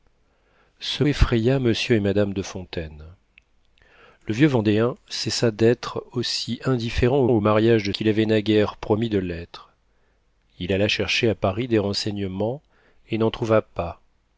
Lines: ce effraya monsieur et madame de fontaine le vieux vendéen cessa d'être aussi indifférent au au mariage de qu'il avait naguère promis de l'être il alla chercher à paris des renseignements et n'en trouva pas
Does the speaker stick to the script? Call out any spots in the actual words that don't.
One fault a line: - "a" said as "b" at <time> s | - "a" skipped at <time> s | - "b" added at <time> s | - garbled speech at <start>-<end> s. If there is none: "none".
none